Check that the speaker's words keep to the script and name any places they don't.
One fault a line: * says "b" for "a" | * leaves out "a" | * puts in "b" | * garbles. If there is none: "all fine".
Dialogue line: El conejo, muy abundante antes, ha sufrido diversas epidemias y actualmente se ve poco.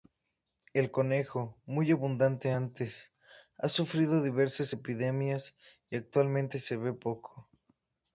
all fine